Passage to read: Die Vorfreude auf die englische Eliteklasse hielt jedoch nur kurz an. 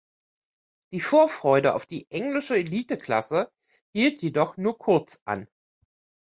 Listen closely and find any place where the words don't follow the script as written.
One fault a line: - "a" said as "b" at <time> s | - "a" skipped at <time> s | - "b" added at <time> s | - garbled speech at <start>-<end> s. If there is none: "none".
none